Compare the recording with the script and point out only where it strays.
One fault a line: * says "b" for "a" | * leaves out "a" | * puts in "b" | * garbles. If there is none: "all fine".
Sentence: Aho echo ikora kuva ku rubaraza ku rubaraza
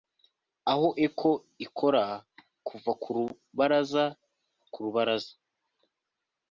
all fine